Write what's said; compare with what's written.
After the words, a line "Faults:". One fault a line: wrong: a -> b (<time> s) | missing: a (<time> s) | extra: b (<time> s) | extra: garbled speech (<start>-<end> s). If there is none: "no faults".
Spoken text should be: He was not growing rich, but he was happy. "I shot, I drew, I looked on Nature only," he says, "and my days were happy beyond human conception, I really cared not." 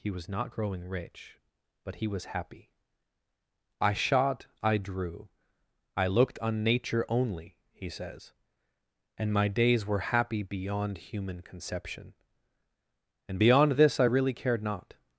He was not growing rich, but he was happy. "I shot, I drew, I looked on Nature only," he says, "and my days were happy beyond human conception, and beyond this I really cared not."
Faults:
extra: and beyond this (13.3 s)